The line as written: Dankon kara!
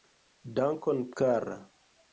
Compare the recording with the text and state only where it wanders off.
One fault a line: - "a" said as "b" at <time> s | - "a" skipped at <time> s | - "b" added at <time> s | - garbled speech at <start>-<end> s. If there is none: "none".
none